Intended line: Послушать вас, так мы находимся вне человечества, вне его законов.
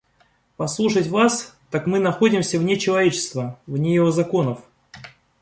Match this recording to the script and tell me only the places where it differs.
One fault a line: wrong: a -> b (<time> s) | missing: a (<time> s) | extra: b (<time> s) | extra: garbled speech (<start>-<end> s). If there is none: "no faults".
no faults